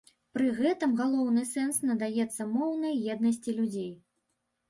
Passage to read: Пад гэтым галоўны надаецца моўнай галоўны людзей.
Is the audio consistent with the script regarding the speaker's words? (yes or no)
no